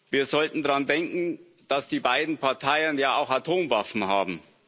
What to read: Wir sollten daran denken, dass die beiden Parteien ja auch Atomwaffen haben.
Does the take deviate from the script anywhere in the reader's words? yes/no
no